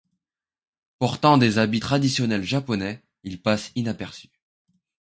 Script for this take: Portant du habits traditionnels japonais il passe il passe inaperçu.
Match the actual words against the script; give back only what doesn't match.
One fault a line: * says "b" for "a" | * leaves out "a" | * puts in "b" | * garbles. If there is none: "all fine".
* says "des" for "du"
* leaves out "il passe"